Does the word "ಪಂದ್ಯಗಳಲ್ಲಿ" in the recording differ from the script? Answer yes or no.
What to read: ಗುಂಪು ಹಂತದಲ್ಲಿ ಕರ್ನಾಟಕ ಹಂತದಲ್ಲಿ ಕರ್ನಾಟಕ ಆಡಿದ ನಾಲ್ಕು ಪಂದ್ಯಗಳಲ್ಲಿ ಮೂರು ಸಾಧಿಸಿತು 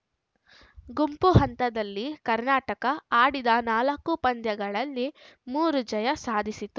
no